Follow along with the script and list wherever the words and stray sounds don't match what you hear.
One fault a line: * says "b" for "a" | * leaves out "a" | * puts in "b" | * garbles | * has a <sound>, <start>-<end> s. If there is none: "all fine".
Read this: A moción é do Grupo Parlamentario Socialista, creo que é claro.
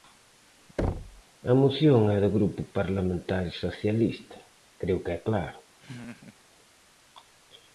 * has a thud, 0.8-1.2 s
* has a laugh, 5.8-6.4 s